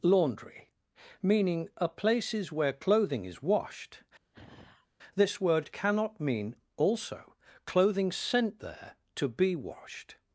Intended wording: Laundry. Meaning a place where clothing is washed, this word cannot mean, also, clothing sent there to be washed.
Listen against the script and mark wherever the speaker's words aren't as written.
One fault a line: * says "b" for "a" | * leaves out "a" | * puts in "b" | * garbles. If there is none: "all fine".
* says "places" for "place"